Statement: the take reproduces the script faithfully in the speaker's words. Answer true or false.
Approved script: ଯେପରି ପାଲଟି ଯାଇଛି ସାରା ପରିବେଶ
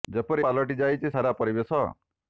true